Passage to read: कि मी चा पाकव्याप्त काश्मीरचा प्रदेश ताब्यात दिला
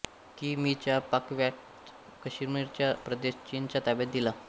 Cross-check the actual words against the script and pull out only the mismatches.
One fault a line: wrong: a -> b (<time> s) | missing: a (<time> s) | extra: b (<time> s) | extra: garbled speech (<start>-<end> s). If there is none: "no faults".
extra: चीनच्या (3.5 s)